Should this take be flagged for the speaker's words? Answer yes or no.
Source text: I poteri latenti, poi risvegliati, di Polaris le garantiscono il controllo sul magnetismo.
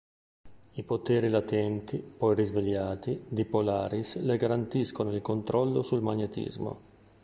no